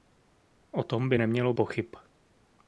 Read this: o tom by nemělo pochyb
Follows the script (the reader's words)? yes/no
yes